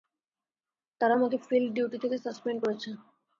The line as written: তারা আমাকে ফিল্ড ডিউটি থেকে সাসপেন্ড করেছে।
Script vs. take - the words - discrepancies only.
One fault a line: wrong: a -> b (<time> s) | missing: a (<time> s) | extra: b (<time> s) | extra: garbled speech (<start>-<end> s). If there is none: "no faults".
no faults